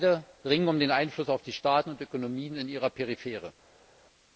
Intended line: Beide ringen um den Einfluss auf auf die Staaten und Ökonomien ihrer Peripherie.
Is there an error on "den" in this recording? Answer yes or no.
no